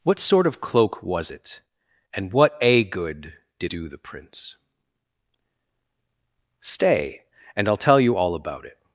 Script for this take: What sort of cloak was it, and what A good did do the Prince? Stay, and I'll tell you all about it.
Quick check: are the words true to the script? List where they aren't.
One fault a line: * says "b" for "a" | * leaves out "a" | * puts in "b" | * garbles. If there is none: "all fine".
all fine